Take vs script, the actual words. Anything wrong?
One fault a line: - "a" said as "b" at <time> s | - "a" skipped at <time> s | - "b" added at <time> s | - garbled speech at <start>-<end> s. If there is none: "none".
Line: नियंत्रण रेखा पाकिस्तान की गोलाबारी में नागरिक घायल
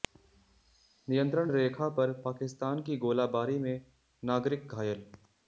- "पर" added at 1.9 s